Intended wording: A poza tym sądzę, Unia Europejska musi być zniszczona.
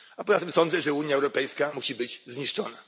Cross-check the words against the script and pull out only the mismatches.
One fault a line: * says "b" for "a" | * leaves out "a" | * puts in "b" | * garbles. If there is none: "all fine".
* puts in "że"